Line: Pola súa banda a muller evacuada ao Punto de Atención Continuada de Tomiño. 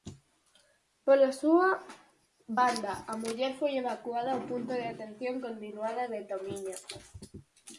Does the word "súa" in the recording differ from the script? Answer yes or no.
no